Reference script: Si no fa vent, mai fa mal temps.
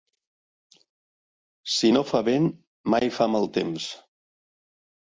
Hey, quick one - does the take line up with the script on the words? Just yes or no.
yes